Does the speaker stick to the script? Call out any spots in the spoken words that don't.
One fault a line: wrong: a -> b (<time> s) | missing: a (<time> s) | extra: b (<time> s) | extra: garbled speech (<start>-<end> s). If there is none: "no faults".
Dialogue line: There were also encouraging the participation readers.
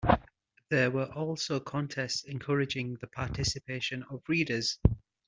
extra: contests (1.6 s)
extra: of (4.1 s)